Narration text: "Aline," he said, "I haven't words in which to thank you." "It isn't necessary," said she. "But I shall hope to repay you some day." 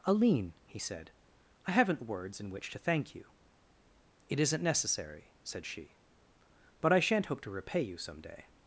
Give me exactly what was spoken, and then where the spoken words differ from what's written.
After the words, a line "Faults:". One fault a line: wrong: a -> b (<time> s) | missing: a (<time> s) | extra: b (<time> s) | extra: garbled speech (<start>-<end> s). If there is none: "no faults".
"Aline," he said, "I haven't words in which to thank you." "It isn't necessary," said she. "But I shan't hope to repay you some day."
Faults:
wrong: shall -> shan't (7.0 s)